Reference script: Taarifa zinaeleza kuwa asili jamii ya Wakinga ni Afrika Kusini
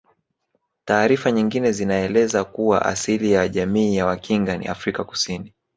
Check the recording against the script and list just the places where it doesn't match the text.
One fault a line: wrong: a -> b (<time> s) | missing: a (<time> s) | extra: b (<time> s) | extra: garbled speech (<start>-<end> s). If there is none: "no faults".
extra: nyingine (1.3 s)
extra: ya (3.3 s)